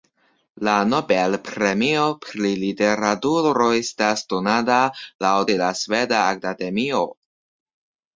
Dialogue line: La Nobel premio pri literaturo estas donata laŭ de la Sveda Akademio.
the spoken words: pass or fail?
pass